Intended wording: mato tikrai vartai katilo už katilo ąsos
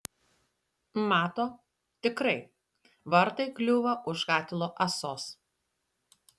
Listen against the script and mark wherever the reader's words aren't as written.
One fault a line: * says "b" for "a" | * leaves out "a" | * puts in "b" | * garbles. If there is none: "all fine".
* says "kliūva" for "katilo"